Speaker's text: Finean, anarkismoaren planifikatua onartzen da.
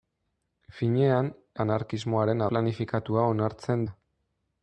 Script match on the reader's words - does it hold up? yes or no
yes